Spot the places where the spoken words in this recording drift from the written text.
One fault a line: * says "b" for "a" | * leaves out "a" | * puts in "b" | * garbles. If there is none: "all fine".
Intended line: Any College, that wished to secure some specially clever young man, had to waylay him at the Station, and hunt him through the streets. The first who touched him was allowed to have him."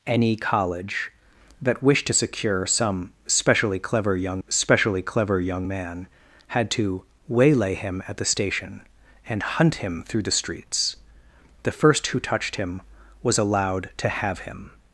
* puts in "specially clever young"